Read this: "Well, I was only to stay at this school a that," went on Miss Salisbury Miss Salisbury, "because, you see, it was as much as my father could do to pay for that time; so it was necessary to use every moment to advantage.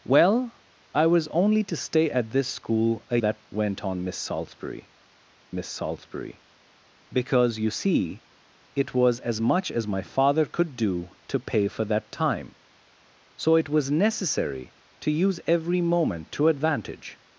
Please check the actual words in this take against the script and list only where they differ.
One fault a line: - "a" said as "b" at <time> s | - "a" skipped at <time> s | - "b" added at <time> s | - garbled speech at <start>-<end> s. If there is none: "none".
none